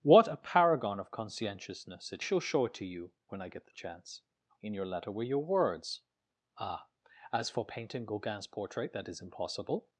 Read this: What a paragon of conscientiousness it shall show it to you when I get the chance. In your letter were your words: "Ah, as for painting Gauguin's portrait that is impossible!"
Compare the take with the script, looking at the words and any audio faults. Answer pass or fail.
pass